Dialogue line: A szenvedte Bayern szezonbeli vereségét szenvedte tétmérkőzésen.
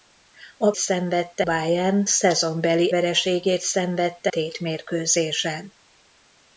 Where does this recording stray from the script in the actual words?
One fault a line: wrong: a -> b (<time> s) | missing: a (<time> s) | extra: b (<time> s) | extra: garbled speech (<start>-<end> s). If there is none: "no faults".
no faults